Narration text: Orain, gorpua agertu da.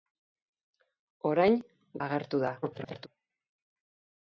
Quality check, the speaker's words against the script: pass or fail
fail